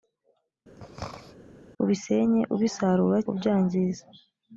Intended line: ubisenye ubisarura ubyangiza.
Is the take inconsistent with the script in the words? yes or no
no